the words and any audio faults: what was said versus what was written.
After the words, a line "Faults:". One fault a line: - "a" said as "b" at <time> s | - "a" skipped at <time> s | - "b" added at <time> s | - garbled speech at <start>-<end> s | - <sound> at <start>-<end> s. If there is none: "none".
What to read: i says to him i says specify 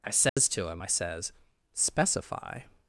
i says to him i says specify
Faults:
- dropout at 0.3-0.4 s